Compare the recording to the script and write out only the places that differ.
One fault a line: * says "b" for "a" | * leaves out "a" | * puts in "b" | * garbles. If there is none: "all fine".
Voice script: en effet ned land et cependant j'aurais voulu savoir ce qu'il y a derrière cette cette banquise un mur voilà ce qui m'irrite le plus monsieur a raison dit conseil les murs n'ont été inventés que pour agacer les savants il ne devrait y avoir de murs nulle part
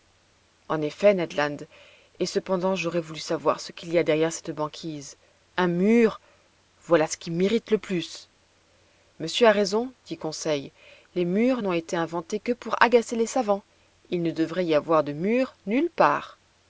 * leaves out "cette"